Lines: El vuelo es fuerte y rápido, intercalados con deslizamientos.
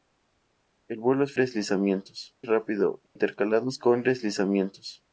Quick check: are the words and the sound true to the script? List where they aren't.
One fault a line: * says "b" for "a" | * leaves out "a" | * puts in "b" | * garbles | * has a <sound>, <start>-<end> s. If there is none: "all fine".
* says "deslizamientos" for "fuerte"
* has a dropout, 3.1-3.2 s